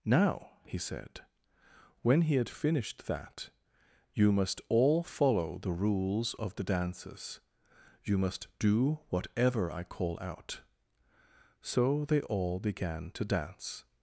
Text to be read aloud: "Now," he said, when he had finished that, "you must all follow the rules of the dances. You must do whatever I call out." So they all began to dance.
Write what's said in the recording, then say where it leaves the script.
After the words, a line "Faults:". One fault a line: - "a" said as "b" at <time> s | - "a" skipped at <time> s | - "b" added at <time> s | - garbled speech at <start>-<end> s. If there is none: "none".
"Now," he said, when he had finished that, "you must all follow the rules of the dances. You must do whatever I call out." So they all began to dance.
Faults:
none